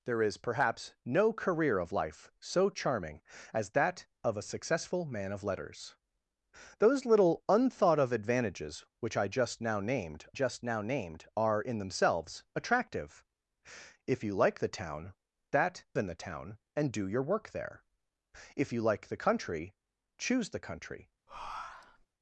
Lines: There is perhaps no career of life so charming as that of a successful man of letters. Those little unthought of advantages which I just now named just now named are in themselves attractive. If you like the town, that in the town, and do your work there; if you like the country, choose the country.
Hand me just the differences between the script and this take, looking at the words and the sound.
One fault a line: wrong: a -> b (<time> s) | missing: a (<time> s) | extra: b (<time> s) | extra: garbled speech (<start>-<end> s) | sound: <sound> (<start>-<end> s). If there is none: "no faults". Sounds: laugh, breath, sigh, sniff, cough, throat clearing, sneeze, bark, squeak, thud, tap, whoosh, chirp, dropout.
sound: breath (21.3-22.1 s)